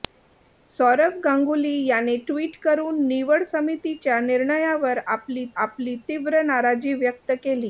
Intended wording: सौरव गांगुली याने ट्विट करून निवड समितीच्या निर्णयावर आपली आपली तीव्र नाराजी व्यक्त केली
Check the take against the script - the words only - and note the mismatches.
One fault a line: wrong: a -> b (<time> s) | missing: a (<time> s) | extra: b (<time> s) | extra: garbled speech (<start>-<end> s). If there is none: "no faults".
no faults